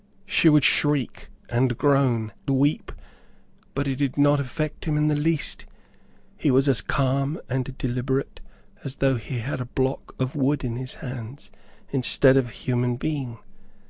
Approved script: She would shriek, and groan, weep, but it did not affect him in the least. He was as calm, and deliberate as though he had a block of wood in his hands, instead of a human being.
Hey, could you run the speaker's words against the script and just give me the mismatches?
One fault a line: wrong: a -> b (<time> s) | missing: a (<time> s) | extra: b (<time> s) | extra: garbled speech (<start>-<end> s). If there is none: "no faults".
no faults